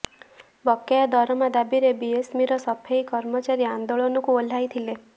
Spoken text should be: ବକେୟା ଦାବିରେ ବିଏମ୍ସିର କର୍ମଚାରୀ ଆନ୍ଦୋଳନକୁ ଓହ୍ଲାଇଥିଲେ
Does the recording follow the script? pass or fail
fail